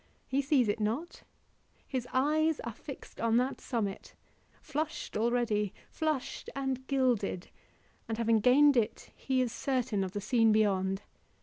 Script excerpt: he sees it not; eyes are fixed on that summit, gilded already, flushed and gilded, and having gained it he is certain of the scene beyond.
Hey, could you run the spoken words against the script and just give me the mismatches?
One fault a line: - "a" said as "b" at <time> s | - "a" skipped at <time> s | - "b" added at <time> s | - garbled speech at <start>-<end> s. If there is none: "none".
- "his" added at 1.9 s
- "gilded" said as "flushed" at 4.6 s